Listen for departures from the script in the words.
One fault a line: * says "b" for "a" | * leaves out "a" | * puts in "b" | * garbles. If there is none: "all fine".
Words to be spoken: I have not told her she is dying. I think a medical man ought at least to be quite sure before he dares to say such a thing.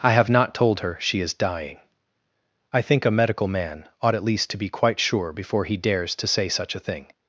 all fine